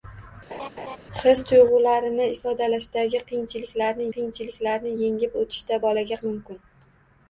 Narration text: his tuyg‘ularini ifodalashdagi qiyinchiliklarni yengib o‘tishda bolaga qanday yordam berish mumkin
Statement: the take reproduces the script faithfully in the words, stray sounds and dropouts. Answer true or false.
false